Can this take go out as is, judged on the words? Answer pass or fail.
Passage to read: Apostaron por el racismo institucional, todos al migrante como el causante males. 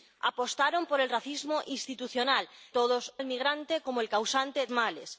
pass